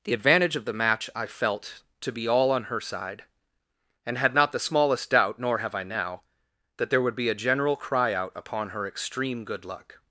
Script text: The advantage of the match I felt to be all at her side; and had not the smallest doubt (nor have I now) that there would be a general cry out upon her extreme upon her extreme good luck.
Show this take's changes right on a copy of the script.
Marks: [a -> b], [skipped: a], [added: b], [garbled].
The advantage of the match I felt to be all [at -> on] her side; and had not the smallest doubt (nor have I now) that there would be a general cry out upon her extreme [skipped: upon her extreme] good luck.